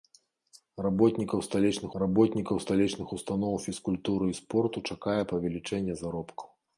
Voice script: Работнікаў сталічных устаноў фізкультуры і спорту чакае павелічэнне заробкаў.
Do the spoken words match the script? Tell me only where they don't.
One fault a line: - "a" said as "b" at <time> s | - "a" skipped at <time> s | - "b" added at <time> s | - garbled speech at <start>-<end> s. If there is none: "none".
- "работнікаў сталічных" added at 2.0 s